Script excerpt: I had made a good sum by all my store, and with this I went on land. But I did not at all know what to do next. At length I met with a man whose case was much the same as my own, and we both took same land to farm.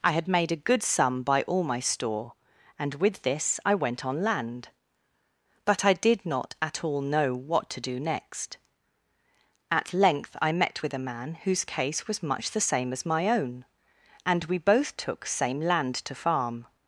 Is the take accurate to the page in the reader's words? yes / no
yes